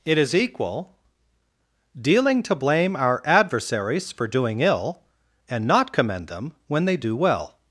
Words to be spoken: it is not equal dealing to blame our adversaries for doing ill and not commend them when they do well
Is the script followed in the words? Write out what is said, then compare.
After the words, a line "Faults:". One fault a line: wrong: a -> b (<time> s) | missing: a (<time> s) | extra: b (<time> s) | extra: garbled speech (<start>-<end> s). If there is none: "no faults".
it is equal dealing to blame our adversaries for doing ill and not commend them when they do well
Faults:
missing: not (0.3 s)